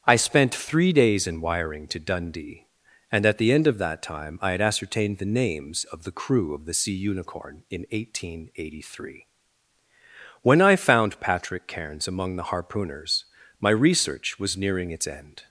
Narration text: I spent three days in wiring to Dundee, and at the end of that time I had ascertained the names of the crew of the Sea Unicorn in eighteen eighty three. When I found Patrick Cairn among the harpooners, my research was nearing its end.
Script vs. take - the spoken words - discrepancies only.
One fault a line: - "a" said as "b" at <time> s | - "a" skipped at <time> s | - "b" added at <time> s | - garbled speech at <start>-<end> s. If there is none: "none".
- "Cairn" said as "Cairns" at 11.7 s